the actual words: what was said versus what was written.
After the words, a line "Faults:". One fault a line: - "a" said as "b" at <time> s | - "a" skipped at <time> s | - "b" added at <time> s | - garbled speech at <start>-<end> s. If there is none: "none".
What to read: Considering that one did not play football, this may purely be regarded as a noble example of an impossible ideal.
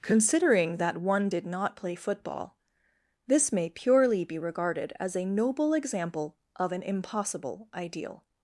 Considering that one did not play football, this may purely be regarded as a noble example of an impossible ideal.
Faults:
none